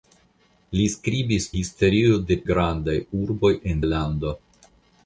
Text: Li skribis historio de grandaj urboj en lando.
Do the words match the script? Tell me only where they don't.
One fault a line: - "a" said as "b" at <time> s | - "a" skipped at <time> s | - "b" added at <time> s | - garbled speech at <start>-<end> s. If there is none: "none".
none